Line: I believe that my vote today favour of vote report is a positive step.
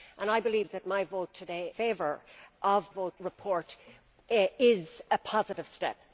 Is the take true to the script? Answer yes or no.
yes